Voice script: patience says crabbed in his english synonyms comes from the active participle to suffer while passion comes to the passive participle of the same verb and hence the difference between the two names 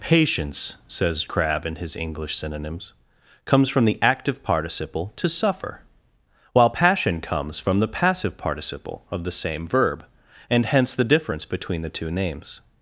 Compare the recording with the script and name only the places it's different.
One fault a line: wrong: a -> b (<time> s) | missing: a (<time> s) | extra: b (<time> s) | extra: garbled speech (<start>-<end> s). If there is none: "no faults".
wrong: crabbed -> crabb (1.2 s)
wrong: to -> from (7.6 s)